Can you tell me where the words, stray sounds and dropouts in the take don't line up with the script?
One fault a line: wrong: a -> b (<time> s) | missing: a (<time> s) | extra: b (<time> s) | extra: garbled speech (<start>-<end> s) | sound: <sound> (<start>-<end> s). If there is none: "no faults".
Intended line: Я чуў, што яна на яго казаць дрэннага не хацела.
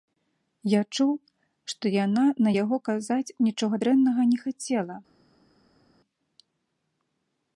extra: нічога (3.5 s)